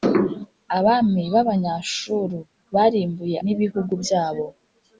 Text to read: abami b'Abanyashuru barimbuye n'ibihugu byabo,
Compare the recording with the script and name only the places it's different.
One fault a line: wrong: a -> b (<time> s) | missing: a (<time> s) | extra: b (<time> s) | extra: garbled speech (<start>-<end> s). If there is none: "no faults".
no faults